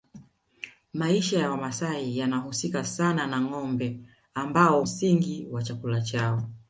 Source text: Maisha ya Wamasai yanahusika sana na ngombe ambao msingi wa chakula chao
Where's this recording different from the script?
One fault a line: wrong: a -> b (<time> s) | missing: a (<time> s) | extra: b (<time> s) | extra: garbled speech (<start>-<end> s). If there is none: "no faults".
no faults